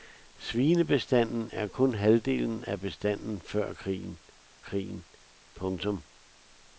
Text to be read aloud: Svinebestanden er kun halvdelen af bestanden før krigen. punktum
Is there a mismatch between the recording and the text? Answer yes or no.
yes